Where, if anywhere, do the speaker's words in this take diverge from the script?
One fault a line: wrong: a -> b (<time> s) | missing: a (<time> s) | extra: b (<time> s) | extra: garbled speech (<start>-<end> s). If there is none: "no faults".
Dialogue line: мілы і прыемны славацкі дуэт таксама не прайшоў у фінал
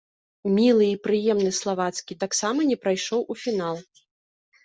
missing: дуэт (2.1 s)